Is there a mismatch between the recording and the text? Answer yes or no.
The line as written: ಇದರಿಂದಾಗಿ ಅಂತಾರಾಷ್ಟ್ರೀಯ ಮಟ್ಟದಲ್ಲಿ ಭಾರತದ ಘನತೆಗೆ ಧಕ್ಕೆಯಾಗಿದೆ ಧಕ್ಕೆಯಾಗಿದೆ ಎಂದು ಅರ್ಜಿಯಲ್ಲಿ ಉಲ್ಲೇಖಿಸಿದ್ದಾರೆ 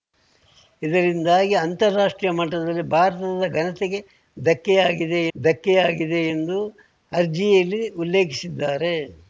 no